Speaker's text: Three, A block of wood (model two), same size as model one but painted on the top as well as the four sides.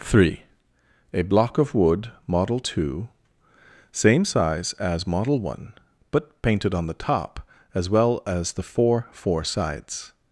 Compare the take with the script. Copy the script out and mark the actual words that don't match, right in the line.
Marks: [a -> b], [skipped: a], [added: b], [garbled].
Three, A block of wood (model two), same size as model one but painted on the top as well as the four [added: four] sides.